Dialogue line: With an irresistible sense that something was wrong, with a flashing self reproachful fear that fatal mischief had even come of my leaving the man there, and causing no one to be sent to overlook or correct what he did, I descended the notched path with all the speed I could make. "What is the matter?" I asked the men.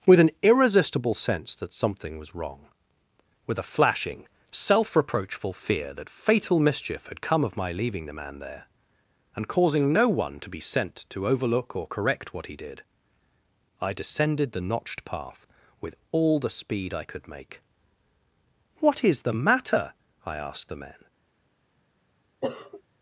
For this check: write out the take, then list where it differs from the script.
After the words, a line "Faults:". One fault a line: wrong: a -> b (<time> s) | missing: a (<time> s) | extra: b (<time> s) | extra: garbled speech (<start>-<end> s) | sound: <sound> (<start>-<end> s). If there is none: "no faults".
With an irresistible sense that something was wrong, with a flashing self reproachful fear that fatal mischief had come of my leaving the man there, and causing no one to be sent to overlook or correct what he did, I descended the notched path with all the speed I could make. "What is the matter?" I asked the men.
Faults:
missing: even (7.2 s)
sound: sniff (22.4-22.8 s)